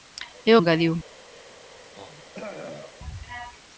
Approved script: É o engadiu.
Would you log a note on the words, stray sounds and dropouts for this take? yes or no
yes